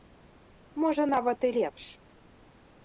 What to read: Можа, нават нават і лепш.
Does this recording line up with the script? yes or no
no